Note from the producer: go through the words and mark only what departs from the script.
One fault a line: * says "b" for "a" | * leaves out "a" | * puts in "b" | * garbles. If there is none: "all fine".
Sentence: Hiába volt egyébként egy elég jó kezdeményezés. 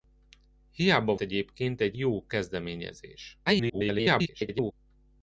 * leaves out "volt"
* leaves out "elég"
* garbles